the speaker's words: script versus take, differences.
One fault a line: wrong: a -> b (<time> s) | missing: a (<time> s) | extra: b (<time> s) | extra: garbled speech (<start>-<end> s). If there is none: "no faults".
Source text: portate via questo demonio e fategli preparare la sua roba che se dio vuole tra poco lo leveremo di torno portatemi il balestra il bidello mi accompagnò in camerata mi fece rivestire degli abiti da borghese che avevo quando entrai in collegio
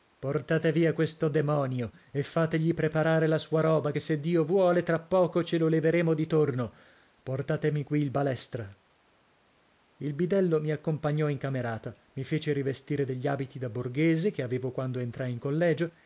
extra: ce (5.4 s)
extra: qui (7.8 s)